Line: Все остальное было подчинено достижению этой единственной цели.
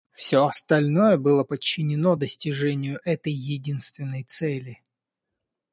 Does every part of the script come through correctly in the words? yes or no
yes